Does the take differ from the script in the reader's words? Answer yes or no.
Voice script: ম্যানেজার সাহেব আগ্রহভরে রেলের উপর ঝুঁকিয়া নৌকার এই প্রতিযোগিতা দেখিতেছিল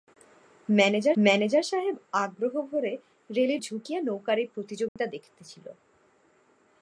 yes